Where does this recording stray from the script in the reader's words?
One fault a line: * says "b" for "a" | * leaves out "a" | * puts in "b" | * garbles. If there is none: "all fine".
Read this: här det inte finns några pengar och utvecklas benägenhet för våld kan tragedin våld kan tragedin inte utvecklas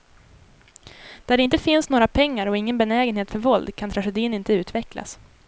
* says "där" for "här"
* says "ingen" for "utvecklas"
* leaves out "våld kan tragedin"